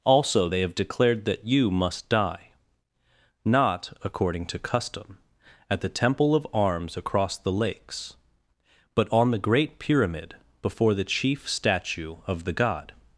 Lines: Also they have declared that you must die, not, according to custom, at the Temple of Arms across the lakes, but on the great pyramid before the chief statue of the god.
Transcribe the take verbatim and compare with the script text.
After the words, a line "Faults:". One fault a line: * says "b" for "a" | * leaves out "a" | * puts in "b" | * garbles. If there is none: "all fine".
Also they have declared that you must die, not, according to custom, at the Temple of Arms across the lakes, but on the great pyramid before the chief statue of the god.
Faults:
all fine